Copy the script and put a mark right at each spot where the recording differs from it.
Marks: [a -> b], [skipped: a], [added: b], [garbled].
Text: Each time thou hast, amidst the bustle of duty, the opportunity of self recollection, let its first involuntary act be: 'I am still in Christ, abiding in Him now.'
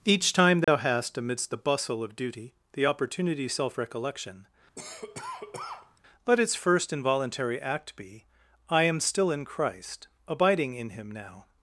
Each time thou hast, amidst the bustle of duty, the opportunity [skipped: of] self recollection, let its first involuntary act be: 'I am still in Christ, abiding in Him now.'